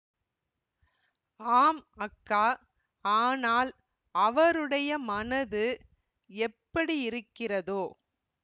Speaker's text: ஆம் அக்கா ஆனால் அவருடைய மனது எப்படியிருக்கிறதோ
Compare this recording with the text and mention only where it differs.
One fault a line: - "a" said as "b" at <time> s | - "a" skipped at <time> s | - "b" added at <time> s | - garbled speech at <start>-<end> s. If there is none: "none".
none